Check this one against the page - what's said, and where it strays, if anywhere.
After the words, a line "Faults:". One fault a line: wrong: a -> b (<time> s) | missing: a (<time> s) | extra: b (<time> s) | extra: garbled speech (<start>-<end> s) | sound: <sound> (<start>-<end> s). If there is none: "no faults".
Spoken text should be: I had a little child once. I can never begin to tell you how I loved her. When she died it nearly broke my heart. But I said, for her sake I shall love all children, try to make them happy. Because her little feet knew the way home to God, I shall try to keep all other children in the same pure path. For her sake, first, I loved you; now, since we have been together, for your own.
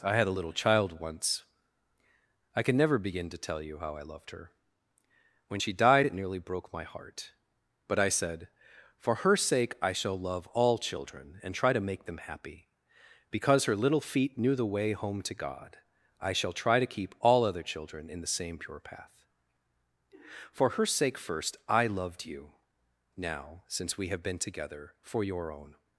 I had a little child once. I can never begin to tell you how I loved her. When she died it nearly broke my heart. But I said, for her sake I shall love all children, and try to make them happy. Because her little feet knew the way home to God, I shall try to keep all other children in the same pure path. For her sake, first, I loved you; now, since we have been together, for your own.
Faults:
extra: and (11.4 s)